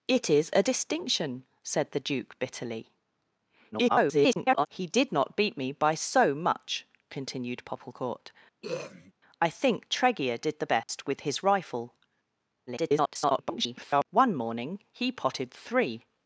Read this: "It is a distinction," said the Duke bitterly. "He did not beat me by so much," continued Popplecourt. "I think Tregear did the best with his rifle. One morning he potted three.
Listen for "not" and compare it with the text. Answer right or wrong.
right